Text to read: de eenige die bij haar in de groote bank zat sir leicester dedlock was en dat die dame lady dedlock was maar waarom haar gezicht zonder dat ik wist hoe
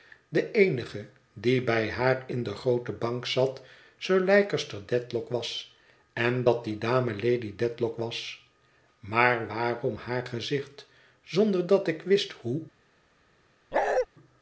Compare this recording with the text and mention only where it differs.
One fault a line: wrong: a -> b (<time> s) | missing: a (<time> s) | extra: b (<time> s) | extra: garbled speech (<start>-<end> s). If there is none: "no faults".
no faults